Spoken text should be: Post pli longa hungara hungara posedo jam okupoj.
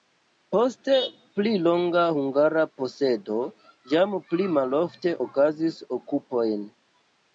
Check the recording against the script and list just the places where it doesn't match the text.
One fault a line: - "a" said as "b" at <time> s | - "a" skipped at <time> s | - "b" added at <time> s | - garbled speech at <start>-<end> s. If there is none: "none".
- "hungara" skipped at 2.6 s
- "pli malofte okazis" added at 4.3 s